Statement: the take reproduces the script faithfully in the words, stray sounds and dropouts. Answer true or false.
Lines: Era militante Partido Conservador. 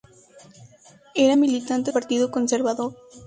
true